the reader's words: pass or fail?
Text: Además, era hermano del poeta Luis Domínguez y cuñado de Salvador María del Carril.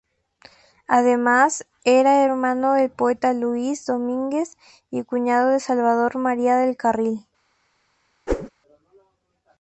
pass